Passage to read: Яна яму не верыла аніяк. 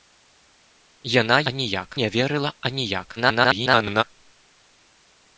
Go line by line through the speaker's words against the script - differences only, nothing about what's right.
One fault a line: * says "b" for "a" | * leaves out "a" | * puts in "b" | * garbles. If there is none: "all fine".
* says "аніяк" for "яму"
* garbles